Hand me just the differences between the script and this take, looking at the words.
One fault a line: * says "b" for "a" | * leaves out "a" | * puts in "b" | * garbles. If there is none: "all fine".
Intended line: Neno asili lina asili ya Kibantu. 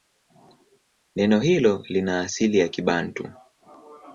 * says "hilo" for "asili"